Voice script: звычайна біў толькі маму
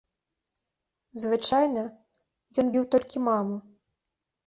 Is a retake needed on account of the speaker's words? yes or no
yes